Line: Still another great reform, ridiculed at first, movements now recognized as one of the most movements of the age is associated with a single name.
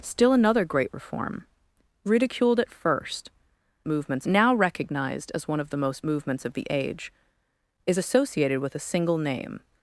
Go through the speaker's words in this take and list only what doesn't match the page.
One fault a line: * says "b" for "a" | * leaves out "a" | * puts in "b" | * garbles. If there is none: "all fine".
all fine